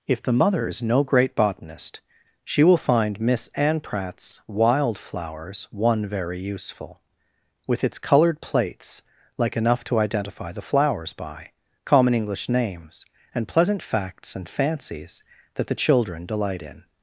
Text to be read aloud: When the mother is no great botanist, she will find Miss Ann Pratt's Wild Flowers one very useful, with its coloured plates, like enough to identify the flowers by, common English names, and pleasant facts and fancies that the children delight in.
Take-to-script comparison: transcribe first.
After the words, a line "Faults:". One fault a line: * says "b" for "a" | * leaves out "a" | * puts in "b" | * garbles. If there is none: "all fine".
If the mother is no great botanist, she will find Miss Ann Pratt's Wild Flowers one very useful, with its coloured plates, like enough to identify the flowers by, common English names, and pleasant facts and fancies that the children delight in.
Faults:
* says "If" for "When"